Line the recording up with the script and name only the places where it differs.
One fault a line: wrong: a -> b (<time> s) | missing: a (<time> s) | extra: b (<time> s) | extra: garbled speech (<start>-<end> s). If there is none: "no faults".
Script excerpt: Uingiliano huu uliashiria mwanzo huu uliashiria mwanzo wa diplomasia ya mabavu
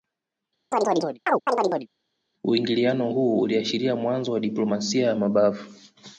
missing: huu uliashiria mwanzo (4.3 s)